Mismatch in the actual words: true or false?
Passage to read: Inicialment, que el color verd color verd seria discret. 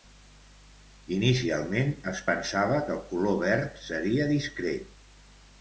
true